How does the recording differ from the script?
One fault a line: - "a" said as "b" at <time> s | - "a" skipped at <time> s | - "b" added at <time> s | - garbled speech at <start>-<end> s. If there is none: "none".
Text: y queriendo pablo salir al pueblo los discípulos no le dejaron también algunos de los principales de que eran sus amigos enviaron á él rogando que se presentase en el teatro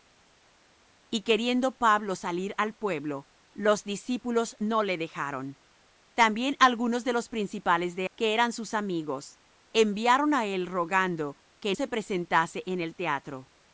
none